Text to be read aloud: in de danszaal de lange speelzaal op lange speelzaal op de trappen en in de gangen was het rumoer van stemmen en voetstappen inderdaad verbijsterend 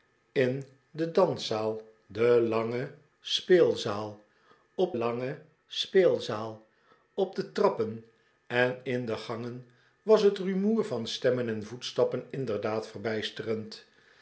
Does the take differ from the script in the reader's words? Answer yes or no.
no